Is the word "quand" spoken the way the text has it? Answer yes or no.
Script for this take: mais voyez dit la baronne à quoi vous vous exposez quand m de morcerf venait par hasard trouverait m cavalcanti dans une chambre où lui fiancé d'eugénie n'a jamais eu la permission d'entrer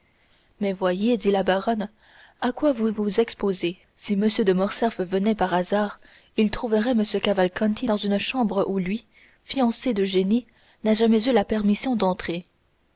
no